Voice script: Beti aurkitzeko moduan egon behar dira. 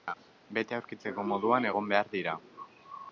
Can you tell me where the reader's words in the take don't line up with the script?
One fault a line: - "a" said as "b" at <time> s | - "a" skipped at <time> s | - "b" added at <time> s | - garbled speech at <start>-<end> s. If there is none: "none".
none